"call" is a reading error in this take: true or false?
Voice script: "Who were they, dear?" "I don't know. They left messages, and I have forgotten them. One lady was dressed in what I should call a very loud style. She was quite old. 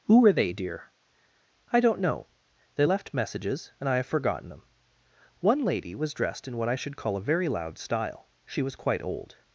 false